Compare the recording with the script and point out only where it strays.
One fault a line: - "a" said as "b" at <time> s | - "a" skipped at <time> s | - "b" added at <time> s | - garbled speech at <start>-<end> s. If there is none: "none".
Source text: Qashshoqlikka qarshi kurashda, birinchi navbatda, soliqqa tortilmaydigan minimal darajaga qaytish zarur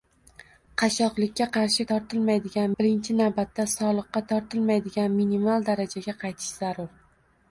- "kurashda" said as "tortilmaydigan" at 1.9 s